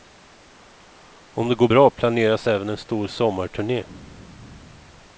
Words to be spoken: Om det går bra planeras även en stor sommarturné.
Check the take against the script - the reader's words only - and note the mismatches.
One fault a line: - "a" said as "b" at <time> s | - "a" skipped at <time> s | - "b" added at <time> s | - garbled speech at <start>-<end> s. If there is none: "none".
none